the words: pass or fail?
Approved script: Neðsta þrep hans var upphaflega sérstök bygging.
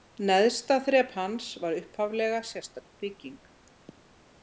pass